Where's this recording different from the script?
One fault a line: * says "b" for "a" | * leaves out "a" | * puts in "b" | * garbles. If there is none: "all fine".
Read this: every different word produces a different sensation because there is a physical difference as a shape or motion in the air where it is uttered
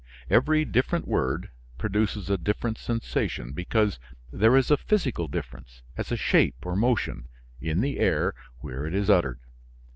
all fine